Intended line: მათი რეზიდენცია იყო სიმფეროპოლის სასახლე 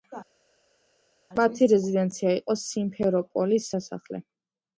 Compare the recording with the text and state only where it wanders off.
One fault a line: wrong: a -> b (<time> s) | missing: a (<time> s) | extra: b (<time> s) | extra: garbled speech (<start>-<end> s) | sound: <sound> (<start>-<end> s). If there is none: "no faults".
no faults